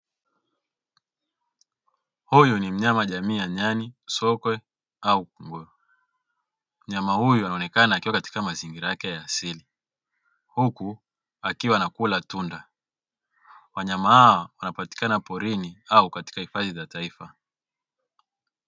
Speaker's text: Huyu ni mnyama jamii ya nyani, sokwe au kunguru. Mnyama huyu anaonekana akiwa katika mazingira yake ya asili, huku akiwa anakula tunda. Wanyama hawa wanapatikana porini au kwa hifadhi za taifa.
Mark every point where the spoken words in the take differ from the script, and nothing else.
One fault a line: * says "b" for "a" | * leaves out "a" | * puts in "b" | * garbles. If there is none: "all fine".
* says "katika" for "kwa"